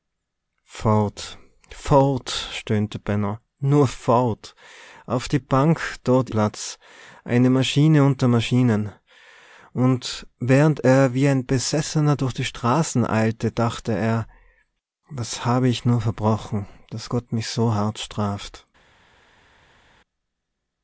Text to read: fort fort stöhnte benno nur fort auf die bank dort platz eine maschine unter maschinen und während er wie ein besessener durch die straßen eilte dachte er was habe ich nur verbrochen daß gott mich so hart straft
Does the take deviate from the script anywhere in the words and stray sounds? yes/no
no